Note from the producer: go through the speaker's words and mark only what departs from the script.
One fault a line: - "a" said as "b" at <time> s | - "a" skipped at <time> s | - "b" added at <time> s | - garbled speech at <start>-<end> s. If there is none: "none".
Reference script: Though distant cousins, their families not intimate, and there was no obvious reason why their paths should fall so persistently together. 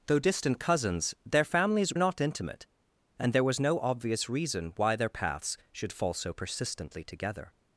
none